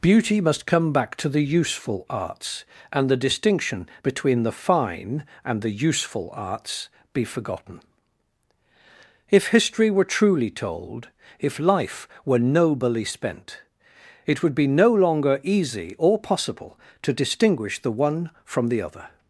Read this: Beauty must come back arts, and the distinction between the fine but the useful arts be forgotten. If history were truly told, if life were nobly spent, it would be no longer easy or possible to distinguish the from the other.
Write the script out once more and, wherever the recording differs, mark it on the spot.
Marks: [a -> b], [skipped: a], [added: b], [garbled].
Beauty must come back [added: to the useful] arts, and the distinction between the fine [but -> and] the useful arts be forgotten. If history were truly told, if life were nobly spent, it would be no longer easy or possible to distinguish the [added: one] from the other.